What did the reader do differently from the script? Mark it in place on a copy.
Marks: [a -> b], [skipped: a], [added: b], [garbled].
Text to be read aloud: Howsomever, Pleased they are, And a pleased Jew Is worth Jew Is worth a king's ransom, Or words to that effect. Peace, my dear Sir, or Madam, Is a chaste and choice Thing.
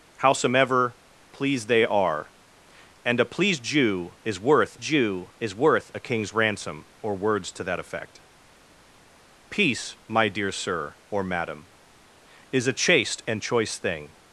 Howsomever, Pleased they are, And a pleased Jew Is worth Jew Is worth a king's ransom, Or words to that effect. Peace, my dear Sir, or Madam, Is a chaste and choice Thing.